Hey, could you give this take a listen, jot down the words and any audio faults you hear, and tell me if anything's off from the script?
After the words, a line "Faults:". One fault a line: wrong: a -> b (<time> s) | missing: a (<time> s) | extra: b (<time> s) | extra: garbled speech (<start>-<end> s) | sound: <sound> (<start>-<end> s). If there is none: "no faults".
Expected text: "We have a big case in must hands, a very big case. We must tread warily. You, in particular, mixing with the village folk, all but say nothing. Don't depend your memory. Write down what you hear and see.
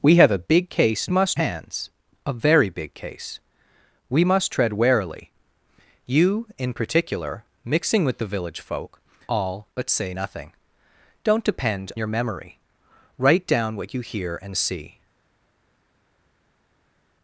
"We have a big case in must hands, a very big case. We must tread warily. You, in particular, mixing with the village folk, all but say nothing. Don't depend your memory. Write down what you hear and see.
Faults:
no faults